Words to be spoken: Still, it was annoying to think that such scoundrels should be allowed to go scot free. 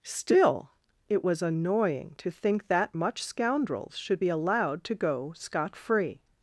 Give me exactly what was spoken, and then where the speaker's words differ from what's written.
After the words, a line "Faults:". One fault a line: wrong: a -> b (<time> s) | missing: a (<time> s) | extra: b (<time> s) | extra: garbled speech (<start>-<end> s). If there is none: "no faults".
Still, it was annoying to think that much scoundrels should be allowed to go scot free.
Faults:
wrong: such -> much (3.0 s)